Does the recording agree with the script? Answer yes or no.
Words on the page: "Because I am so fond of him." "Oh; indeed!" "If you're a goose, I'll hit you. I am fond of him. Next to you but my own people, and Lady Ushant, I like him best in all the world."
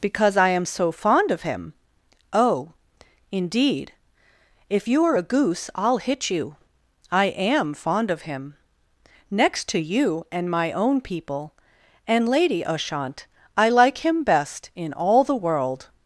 no